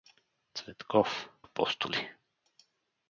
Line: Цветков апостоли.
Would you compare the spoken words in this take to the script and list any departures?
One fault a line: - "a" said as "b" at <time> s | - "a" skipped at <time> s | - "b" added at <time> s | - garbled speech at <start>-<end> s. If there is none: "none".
none